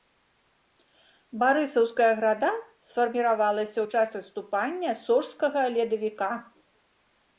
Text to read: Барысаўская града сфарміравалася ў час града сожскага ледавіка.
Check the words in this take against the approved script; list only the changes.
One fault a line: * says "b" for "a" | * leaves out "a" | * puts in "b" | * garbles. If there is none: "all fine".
* says "адступання" for "града"